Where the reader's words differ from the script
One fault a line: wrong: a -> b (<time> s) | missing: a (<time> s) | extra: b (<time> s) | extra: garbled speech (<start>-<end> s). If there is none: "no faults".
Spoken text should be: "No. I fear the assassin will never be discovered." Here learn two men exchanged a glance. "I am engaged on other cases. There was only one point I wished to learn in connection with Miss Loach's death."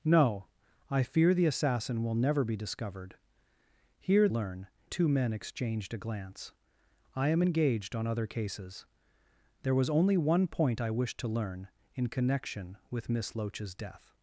no faults